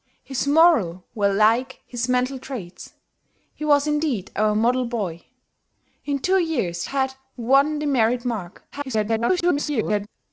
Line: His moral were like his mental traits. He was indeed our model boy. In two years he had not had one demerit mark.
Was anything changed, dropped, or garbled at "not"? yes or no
yes